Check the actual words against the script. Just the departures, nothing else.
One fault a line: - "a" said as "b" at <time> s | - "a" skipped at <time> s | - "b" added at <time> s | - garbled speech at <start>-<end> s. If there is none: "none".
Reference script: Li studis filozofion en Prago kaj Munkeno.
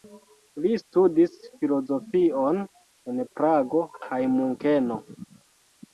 none